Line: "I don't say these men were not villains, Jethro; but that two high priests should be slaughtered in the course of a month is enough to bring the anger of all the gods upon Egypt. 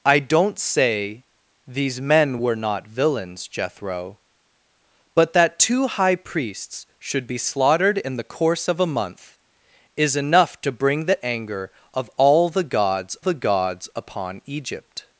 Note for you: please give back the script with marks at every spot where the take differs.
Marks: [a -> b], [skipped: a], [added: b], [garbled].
"I don't say these men were not villains, Jethro; but that two high priests should be slaughtered in the course of a month is enough to bring the anger of all the gods [added: the gods] upon Egypt.